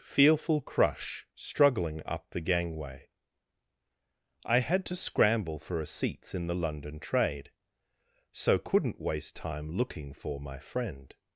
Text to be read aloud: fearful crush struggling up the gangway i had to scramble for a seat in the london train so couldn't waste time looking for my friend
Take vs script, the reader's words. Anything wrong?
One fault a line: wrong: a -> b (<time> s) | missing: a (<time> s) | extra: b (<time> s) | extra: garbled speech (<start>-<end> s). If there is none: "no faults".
wrong: seat -> seats (5.9 s)
wrong: train -> trade (7.0 s)